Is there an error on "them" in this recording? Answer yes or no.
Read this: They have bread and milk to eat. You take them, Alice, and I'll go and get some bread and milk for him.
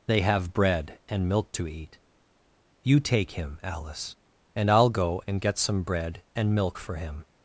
yes